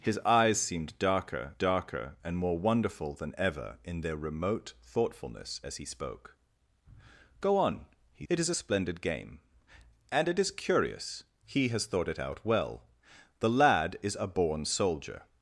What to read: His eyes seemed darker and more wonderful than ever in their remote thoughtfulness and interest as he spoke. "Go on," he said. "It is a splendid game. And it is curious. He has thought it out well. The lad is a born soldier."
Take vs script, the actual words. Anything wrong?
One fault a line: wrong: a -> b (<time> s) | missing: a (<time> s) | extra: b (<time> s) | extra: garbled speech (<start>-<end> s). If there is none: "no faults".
extra: darker (1.6 s)
missing: and interest (5.6 s)
missing: said (8.3 s)